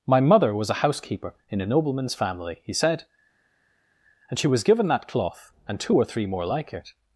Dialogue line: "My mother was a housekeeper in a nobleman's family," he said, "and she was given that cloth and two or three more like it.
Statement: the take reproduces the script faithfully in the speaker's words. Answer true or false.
true